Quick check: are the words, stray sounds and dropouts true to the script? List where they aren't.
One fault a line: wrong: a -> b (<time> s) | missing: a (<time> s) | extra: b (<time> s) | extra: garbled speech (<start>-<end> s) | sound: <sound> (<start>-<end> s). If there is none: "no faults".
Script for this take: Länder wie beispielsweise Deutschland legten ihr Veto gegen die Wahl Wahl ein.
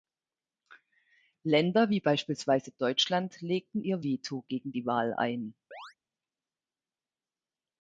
missing: Wahl (5.1 s)
sound: chirp (5.7-5.9 s)